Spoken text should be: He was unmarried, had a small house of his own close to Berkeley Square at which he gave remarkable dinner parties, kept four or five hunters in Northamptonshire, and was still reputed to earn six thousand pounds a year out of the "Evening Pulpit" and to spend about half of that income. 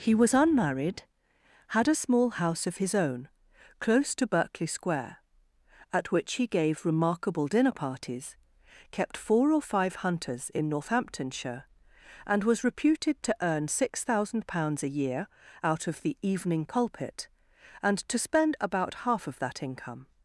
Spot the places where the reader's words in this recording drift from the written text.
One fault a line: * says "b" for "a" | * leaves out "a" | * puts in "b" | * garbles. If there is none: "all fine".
* leaves out "still"